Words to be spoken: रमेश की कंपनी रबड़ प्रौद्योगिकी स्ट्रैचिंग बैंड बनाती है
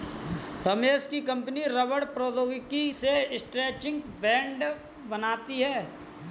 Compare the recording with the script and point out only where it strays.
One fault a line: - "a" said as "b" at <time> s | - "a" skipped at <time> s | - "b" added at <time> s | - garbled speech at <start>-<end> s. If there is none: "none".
- "से" added at 2.9 s